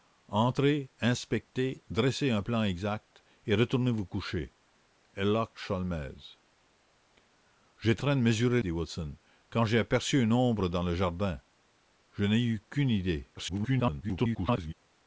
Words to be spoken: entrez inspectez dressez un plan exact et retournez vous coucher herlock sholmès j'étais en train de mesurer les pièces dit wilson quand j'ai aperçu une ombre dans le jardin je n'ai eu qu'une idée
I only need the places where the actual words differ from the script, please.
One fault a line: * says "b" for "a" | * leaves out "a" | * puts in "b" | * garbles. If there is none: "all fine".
* leaves out "en"
* leaves out "les pièces"
* garbles